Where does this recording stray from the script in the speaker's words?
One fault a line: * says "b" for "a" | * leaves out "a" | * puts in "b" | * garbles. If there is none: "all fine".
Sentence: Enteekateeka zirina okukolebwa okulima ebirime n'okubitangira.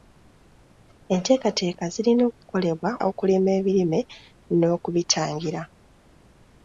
all fine